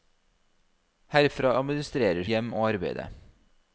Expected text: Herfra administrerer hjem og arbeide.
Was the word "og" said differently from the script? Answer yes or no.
no